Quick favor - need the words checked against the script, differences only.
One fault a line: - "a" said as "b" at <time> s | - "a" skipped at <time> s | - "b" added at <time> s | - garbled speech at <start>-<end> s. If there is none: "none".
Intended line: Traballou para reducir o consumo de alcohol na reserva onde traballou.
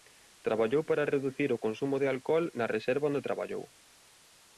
none